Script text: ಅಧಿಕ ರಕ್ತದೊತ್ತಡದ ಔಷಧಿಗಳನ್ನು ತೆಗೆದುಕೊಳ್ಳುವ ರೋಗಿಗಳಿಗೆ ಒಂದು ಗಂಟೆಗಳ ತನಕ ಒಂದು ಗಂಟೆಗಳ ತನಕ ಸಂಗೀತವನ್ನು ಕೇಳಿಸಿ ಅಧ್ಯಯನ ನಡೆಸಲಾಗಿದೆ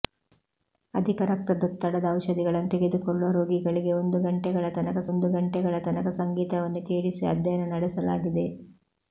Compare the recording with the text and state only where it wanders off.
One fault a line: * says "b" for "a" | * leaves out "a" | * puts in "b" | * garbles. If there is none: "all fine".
all fine